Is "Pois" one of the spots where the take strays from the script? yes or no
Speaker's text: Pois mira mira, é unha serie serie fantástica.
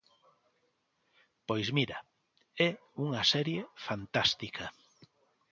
no